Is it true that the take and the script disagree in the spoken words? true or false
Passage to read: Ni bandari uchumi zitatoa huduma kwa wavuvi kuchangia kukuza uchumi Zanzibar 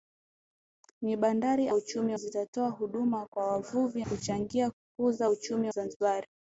false